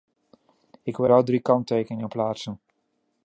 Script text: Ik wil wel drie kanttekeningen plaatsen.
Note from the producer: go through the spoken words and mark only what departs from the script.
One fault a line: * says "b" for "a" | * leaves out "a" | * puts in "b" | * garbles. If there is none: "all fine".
all fine